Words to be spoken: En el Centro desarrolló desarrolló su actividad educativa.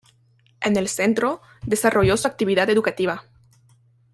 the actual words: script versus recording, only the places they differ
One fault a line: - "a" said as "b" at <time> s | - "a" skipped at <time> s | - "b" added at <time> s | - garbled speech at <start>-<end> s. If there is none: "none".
- "desarrolló" skipped at 2.2 s